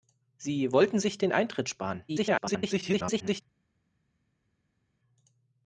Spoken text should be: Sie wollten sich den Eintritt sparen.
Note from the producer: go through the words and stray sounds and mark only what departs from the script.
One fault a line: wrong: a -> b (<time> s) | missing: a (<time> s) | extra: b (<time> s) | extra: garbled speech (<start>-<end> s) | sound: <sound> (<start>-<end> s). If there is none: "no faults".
extra: garbled speech (2.1-3.4 s)